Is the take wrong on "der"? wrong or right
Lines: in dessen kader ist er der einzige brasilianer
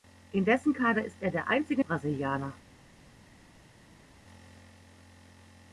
right